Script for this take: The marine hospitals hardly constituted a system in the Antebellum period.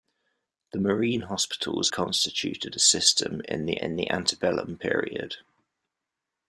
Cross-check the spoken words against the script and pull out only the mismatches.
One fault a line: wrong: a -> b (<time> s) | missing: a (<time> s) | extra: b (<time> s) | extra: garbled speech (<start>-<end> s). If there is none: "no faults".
missing: hardly (1.9 s)
extra: in the (3.8 s)